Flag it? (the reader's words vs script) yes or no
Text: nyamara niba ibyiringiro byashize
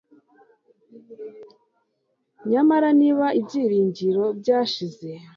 no